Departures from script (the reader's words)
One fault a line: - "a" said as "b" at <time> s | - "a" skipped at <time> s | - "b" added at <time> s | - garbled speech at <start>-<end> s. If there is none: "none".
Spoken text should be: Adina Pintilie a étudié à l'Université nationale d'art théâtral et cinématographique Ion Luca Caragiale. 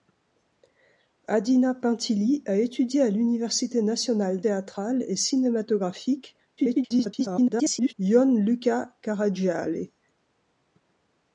- "d'art" skipped at 4.4 s
- garbled speech at 6.6-7.9 s